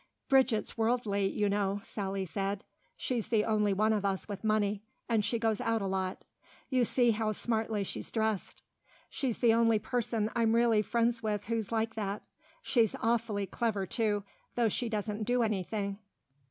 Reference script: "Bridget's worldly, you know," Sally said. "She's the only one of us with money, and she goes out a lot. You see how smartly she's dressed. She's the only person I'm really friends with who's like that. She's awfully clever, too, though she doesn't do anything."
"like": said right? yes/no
yes